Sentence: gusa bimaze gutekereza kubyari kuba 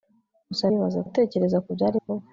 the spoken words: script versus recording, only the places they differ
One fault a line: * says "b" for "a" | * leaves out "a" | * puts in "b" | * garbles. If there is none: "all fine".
all fine